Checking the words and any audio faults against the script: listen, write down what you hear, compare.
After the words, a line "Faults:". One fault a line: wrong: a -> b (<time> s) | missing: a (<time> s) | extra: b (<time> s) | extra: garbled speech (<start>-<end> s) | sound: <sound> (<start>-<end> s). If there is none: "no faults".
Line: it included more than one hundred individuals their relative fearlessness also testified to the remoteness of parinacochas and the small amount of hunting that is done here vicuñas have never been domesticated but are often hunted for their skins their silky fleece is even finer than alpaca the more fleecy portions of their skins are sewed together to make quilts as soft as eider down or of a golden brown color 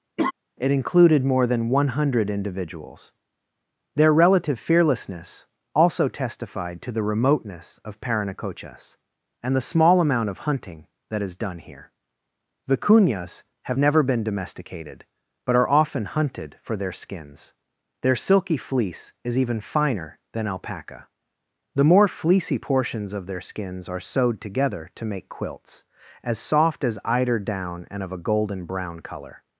it included more than one hundred individuals their relative fearlessness also testified to the remoteness of parinacochas and the small amount of hunting that is done here vicuñas have never been domesticated but are often hunted for their skins their silky fleece is even finer than alpaca the more fleecy portions of their skins are sewed together to make quilts as soft as eider down and of a golden brown color
Faults:
sound: laugh (0.2-0.3 s)
wrong: or -> and (27.9 s)